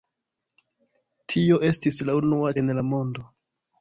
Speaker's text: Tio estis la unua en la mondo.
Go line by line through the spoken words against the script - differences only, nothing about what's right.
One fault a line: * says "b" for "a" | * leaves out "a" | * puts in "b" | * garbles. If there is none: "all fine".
all fine